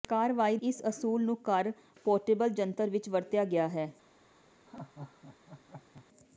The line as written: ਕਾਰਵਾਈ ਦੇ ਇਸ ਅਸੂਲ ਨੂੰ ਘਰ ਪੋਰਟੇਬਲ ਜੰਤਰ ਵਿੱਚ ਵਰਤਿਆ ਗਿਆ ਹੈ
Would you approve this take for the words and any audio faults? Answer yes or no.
no